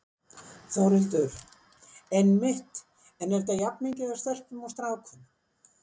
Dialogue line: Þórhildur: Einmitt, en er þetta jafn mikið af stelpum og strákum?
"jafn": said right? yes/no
yes